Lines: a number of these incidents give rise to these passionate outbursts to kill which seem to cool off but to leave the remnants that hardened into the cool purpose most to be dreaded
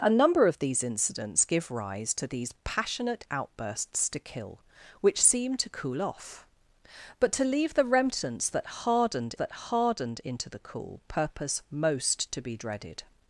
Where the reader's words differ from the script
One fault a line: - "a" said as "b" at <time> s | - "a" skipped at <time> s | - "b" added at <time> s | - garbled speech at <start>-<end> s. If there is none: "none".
- "that hardened" added at 9.3 s